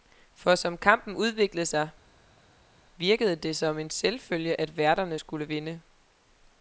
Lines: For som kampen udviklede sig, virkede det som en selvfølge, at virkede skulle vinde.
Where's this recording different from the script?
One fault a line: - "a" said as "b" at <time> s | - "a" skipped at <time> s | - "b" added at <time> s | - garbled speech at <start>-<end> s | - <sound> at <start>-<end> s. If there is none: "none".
- "virkede" said as "værterne" at 4.8 s